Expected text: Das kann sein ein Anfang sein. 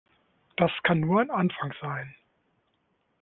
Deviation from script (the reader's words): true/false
true